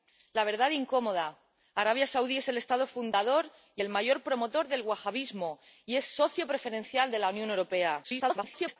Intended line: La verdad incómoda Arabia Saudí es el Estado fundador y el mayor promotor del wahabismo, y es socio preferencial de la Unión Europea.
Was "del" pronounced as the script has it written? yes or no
yes